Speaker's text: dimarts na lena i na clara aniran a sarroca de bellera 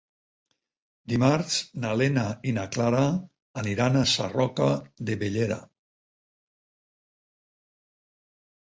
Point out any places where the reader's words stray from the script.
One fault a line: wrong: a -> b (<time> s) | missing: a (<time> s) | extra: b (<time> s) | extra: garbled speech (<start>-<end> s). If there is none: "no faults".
no faults